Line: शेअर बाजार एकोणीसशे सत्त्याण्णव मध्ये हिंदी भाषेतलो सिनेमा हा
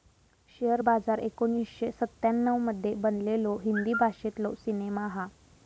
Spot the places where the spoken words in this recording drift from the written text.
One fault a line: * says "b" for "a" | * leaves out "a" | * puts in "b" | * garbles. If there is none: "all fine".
* puts in "बनलेलो"